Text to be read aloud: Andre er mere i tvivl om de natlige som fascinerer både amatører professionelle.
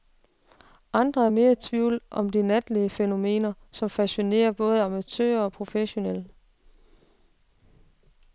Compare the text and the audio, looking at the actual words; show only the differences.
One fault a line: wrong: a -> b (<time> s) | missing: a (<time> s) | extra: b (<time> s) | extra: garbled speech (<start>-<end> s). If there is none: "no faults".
extra: fænomener (2.9 s)
extra: og (5.4 s)